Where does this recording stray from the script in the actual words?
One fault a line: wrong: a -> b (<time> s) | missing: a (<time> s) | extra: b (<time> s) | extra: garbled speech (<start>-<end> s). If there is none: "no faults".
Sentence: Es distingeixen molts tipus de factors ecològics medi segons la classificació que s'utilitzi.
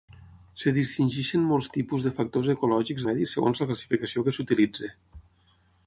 no faults